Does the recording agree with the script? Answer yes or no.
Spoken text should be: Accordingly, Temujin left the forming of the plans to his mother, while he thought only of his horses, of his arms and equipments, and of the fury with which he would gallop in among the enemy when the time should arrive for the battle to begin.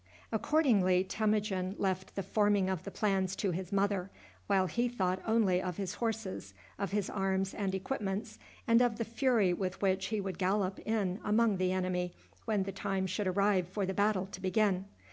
yes